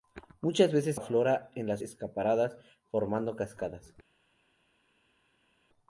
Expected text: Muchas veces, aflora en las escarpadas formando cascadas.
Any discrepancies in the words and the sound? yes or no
no